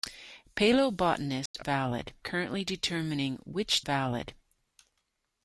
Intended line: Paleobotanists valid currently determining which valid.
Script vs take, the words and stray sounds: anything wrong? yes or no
yes